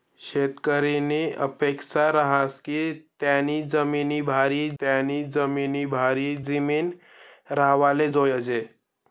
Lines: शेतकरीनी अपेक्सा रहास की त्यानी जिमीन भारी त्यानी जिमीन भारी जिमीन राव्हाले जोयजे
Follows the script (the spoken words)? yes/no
yes